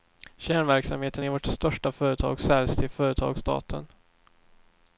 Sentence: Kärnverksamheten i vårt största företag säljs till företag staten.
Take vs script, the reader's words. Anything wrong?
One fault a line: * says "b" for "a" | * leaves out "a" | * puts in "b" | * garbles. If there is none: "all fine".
all fine